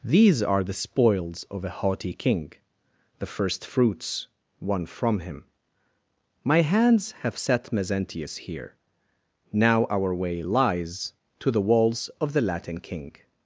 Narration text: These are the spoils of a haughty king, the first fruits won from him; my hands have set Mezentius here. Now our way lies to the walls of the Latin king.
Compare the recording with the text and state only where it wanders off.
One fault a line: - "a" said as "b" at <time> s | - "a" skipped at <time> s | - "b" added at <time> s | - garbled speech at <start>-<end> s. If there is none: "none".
none